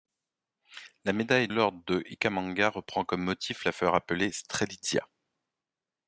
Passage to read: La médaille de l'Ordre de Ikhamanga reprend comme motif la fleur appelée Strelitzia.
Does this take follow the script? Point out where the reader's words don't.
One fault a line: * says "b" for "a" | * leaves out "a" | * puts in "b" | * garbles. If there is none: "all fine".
* leaves out "de"